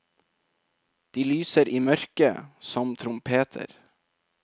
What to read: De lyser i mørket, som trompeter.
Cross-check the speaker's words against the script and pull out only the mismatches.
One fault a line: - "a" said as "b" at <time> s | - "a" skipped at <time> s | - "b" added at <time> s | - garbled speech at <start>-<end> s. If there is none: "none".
none